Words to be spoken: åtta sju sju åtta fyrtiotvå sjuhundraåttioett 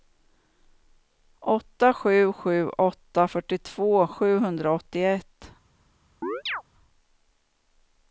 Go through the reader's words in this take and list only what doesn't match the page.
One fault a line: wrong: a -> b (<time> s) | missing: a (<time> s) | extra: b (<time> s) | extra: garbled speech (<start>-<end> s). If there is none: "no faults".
no faults